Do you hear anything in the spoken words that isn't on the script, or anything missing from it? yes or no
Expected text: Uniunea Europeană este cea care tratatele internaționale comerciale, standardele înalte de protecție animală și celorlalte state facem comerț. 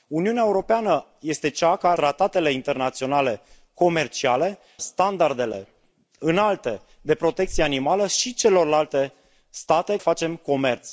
no